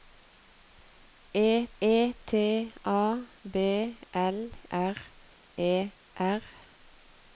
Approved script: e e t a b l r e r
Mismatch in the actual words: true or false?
false